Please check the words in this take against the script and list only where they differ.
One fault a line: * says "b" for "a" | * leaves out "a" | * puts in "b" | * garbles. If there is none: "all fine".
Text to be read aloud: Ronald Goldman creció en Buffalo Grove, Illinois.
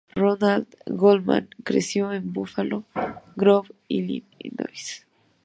all fine